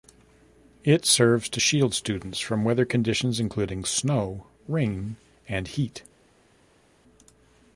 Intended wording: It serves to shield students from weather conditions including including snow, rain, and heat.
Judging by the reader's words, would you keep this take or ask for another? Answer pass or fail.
fail